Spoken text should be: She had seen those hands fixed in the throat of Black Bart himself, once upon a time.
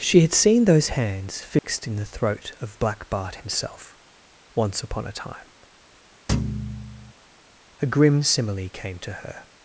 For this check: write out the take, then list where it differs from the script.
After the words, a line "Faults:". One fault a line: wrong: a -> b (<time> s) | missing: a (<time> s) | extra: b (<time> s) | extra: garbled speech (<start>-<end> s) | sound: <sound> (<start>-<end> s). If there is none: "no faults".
She had seen those hands fixed in the throat of Black Bart himself, once upon a time. A grim simile came to her
Faults:
sound: dropout (1.6-1.6 s)
sound: thud (6.3-7.1 s)
extra: A grim simile came to her (7.8 s)